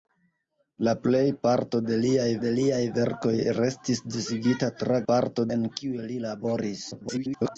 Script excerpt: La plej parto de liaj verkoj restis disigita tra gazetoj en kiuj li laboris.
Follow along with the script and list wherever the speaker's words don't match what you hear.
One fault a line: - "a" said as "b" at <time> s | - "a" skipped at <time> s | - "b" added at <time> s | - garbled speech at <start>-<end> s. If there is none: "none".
- "de liaj" added at 2.4 s
- "gazetoj" said as "parto" at 5.1 s
- garbled speech at 6.9-7.6 s